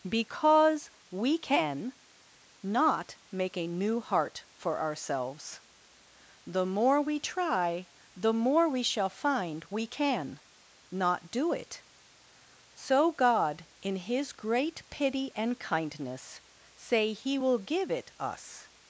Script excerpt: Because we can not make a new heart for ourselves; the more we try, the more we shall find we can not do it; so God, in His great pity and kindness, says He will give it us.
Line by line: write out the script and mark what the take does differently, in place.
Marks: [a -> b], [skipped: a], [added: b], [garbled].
Because we can not make a new heart for ourselves; the more we try, the more we shall find we can not do it; so God, in His great pity and kindness, [says -> say] He will give it us.